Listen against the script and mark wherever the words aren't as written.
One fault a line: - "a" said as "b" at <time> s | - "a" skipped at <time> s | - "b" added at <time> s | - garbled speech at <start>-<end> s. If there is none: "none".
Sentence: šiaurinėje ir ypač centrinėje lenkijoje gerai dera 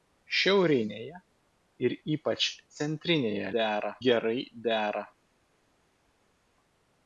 - "lenkijoje" said as "dera" at 3.6 s